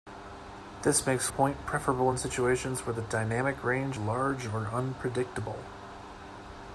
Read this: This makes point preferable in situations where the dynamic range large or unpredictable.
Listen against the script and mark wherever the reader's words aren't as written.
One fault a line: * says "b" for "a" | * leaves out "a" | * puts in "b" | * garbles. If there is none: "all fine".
all fine